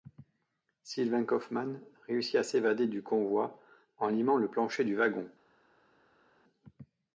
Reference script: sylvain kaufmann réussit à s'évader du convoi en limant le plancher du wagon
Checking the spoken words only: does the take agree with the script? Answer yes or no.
yes